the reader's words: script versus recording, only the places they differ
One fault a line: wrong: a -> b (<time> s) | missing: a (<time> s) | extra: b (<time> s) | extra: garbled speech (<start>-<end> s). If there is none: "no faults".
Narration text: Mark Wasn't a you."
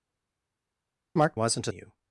no faults